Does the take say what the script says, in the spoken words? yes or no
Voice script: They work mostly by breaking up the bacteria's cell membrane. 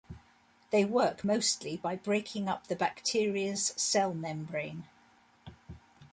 yes